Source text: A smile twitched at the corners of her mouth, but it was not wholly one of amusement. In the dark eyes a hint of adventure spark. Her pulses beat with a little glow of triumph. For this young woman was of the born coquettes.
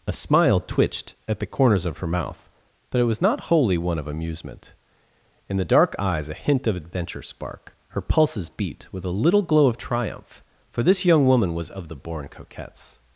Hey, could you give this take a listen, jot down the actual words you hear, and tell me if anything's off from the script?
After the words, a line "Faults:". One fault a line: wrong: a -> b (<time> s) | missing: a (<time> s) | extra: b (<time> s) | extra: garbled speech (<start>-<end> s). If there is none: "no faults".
A smile twitched at the corners of her mouth, but it was not wholly one of amusement. In the dark eyes a hint of adventure spark. Her pulses beat with a little glow of triumph. For this young woman was of the born coquettes.
Faults:
no faults